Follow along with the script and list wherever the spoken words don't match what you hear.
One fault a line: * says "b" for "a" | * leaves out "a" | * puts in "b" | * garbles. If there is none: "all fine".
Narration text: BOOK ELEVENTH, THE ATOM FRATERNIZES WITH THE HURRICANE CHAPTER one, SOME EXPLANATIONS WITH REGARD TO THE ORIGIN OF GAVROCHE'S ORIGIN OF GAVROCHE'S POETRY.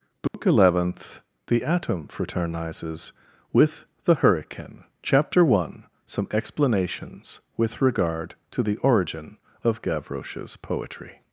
* leaves out "ORIGIN OF GAVROCHE'S"